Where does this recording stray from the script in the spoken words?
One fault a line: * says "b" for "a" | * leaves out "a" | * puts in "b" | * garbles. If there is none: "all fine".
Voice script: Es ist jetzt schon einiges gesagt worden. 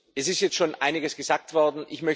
all fine